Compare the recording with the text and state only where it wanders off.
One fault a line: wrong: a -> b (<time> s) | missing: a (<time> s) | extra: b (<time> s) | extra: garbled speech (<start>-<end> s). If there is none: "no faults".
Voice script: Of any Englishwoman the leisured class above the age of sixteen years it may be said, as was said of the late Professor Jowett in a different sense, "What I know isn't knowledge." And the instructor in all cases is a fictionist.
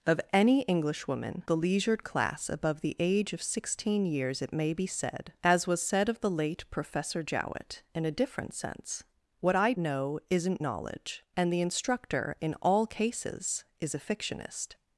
no faults